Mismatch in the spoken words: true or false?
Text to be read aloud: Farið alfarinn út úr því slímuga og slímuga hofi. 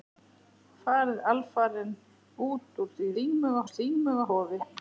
false